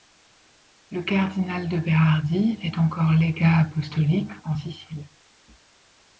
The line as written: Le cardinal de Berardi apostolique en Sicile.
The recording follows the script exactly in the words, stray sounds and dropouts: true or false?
false